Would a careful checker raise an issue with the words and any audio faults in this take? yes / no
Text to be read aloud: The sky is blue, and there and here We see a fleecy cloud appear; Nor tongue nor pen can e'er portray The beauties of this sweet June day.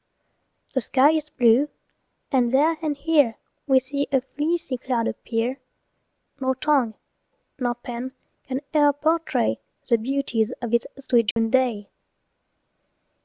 yes